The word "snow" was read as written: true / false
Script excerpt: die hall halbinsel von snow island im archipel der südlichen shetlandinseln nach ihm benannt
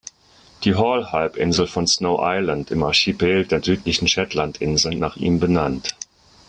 true